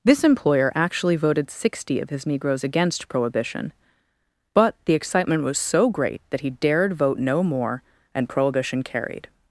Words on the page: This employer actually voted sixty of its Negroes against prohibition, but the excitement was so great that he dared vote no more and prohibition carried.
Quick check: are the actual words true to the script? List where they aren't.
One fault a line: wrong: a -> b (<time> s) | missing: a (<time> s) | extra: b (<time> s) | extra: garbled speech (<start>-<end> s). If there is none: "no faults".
wrong: its -> his (2.1 s)